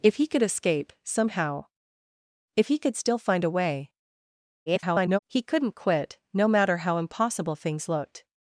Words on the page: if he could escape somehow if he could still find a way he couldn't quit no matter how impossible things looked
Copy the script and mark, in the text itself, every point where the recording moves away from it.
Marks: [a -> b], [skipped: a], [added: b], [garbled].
if he could escape somehow if he could still find a way [garbled] he couldn't quit no matter how impossible things looked